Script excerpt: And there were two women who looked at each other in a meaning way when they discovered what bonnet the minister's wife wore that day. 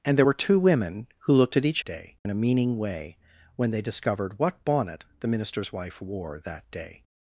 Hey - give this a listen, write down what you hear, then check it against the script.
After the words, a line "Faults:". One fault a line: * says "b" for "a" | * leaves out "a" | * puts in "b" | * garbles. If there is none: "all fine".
And there were two women who looked at each day in a meaning way when they discovered what bonnet the minister's wife wore that day.
Faults:
* says "day" for "other"